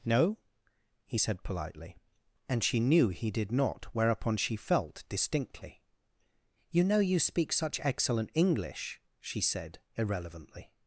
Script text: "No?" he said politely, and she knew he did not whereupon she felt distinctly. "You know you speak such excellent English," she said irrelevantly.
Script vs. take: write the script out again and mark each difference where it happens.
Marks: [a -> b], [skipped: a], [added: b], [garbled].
"No?" he said politely, and she knew he did not whereupon she felt distinctly. "You know you speak such excellent English," she said irrelevantly.